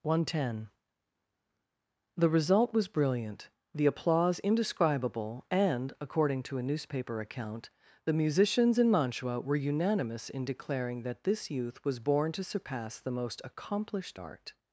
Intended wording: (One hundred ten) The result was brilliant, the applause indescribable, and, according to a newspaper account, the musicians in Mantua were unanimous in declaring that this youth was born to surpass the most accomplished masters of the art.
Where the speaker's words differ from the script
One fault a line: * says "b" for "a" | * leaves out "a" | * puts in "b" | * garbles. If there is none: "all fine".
* leaves out "masters of the"